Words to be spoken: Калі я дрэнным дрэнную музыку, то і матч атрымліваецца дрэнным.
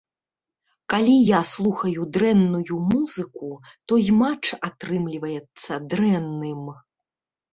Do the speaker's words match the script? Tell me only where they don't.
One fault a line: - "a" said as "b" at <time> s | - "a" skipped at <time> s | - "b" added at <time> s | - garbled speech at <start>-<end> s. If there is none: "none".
- "дрэнным" said as "слухаю" at 1.5 s